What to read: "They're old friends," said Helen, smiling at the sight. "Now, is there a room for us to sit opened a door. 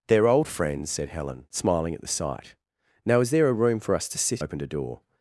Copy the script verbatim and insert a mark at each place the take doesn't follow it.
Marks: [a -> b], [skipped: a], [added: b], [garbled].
"They're old friends," said Helen, smiling at the sight. "Now, is there a room for us to sit opened a door.